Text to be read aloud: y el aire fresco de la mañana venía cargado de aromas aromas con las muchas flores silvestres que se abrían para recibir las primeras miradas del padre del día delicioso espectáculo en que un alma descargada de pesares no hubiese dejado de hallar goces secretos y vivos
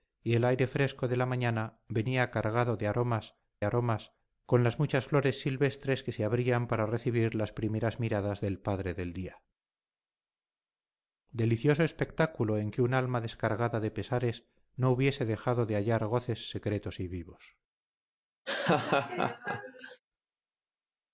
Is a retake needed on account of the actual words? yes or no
no